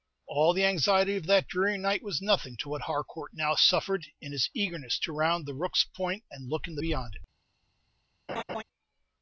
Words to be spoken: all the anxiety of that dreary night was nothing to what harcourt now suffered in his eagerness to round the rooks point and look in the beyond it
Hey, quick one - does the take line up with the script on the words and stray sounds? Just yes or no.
no